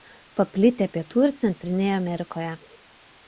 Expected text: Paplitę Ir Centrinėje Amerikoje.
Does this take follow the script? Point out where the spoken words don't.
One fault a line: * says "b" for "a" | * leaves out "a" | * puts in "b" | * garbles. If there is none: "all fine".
* puts in "Pietų"